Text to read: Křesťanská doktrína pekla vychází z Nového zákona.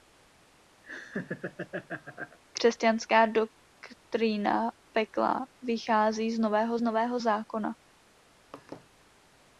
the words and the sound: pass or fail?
fail